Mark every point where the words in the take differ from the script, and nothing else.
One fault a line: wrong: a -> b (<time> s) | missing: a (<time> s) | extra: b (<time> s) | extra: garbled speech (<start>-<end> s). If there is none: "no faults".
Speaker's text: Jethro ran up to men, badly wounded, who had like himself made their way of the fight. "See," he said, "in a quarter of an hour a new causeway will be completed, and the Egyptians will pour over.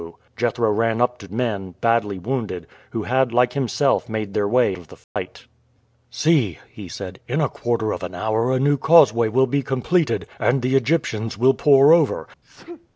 no faults